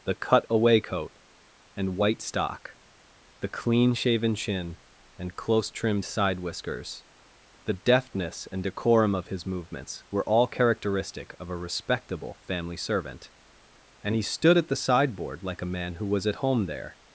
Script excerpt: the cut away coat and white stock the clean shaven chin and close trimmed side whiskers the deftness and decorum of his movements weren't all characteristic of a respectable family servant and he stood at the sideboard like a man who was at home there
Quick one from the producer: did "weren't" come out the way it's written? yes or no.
no